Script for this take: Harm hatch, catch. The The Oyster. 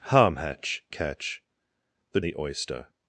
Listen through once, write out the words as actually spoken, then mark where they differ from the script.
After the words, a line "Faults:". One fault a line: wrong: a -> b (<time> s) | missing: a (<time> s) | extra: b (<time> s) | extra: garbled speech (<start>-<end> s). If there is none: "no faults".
Harm hatch, catch. The The Oyster.
Faults:
no faults